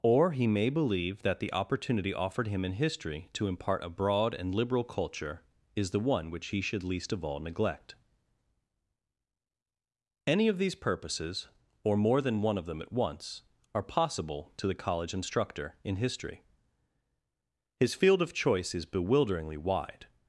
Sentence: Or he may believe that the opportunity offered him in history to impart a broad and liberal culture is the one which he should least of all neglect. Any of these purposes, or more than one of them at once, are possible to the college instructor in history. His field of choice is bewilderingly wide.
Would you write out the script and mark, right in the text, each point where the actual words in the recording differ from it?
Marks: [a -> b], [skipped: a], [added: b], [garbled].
Or he may believe that the opportunity offered him in history to impart a broad and liberal culture is the one which he should least of all neglect. Any of these purposes, or more than one of them at once, are possible to the college instructor in history. His field of choice is bewilderingly wide.